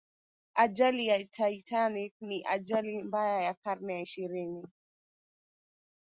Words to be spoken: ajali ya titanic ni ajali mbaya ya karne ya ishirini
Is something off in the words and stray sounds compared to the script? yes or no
no